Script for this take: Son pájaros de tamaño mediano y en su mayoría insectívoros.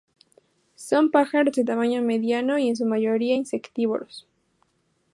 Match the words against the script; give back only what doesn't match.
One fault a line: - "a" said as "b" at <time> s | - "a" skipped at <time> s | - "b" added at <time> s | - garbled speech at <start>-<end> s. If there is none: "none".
none